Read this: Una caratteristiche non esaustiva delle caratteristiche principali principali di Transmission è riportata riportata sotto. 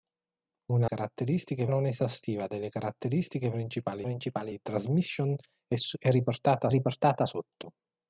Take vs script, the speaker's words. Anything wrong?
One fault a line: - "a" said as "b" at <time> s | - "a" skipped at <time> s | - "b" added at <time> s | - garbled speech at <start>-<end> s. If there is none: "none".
none